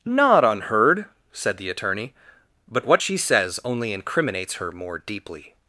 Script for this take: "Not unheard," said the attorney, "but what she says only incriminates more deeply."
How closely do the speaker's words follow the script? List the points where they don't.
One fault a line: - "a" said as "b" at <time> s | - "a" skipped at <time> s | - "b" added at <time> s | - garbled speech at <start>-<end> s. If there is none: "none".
- "her" added at 4.6 s